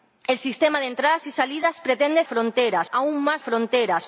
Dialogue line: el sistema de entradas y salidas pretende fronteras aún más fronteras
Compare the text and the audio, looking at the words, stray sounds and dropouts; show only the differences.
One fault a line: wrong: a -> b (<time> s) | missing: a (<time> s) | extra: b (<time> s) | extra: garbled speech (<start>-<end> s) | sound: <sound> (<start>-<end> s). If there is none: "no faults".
no faults